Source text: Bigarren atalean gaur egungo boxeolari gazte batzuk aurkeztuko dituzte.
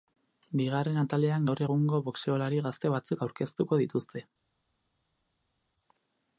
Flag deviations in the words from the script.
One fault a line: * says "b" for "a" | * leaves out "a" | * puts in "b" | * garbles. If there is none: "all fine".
all fine